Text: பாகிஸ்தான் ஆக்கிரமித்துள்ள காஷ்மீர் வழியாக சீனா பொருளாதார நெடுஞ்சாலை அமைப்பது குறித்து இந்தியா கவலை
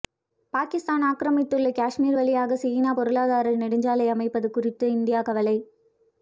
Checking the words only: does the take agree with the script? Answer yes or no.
yes